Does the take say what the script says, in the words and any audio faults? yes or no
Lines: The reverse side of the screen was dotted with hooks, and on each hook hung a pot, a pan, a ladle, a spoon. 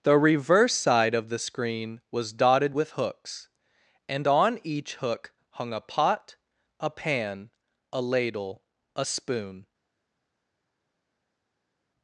yes